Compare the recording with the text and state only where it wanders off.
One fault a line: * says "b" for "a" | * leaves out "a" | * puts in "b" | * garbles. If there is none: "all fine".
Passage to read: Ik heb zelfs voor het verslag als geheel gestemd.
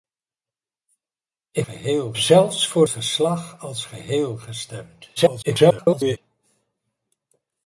* says "geheel" for "heb"
* leaves out "het"
* garbles